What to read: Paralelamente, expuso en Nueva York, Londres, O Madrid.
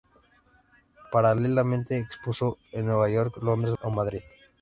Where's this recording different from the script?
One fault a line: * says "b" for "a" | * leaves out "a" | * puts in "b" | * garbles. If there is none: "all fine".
all fine